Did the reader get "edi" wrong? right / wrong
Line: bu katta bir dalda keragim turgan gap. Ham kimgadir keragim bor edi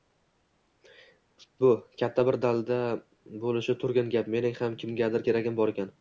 wrong